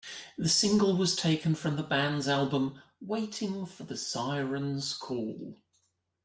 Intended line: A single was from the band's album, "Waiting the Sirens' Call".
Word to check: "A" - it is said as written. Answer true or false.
false